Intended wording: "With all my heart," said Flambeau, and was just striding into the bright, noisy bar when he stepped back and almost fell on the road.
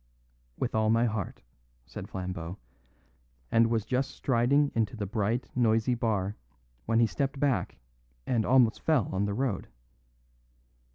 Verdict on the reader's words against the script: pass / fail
pass